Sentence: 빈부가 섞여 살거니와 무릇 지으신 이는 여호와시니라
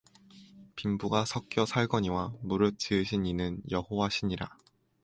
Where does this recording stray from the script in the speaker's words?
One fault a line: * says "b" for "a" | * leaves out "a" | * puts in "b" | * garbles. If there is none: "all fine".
all fine